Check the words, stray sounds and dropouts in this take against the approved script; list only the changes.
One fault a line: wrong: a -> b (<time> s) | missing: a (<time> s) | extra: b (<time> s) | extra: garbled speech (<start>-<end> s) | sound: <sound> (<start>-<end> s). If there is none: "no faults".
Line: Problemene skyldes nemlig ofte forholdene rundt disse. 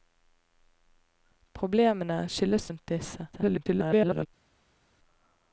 missing: nemlig ofte forholdene (2.7 s)
extra: garbled speech (3.3-4.3 s)